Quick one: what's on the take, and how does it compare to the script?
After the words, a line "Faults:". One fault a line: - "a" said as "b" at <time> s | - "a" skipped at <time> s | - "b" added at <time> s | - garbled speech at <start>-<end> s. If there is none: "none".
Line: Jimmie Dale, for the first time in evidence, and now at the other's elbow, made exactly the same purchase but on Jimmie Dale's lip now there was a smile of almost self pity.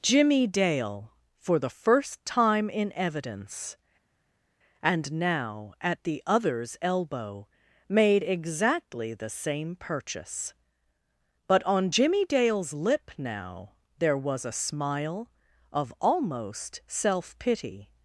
Jimmie Dale, for the first time in evidence, and now at the other's elbow, made exactly the same purchase but on Jimmie Dale's lip now there was a smile of almost self pity.
Faults:
none